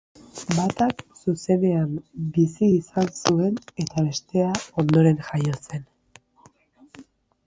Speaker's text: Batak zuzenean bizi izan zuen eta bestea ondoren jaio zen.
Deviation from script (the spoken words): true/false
false